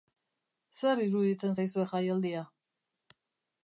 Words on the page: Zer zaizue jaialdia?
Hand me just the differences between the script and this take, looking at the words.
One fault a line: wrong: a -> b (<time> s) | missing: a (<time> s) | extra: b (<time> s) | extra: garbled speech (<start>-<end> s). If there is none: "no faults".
extra: iruditzen (1.0 s)